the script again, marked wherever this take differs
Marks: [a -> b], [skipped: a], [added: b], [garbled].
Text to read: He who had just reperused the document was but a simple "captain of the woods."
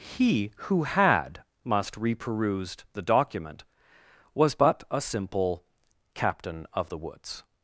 He who had [just -> must] reperused the document was but a simple "captain of the woods."